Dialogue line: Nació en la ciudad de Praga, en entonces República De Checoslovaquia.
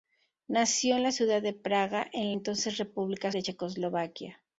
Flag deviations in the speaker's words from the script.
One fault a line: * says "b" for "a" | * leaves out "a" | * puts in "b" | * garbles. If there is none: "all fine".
all fine